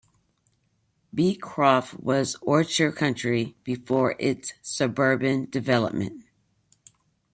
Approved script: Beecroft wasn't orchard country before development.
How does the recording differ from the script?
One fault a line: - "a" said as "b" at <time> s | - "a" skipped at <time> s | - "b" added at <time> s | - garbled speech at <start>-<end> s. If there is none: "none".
- "wasn't" said as "was" at 2.0 s
- "its suburban" added at 4.2 s